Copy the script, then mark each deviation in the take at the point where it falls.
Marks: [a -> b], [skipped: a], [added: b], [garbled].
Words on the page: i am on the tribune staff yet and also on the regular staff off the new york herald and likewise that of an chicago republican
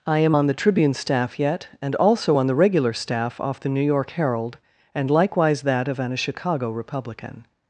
i am on the tribune staff yet and also on the regular staff off the new york herald and likewise that of an chicago republican